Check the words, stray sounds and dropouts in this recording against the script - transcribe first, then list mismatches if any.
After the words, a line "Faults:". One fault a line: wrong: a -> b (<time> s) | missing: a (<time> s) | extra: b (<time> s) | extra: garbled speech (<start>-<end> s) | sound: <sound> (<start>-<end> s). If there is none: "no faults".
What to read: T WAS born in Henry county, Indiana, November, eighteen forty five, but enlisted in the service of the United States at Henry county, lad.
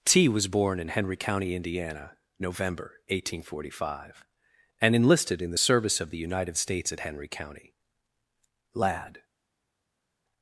T WAS born in Henry county, Indiana, November, eighteen forty five, and enlisted in the service of the United States at Henry county, lad.
Faults:
wrong: but -> and (4.8 s)